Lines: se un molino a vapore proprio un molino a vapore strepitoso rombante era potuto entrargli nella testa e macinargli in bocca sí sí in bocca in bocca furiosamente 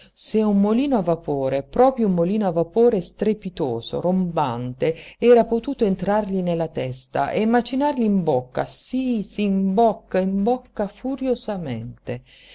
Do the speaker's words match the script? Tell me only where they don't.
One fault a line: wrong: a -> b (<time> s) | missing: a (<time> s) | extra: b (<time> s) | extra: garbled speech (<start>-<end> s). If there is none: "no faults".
no faults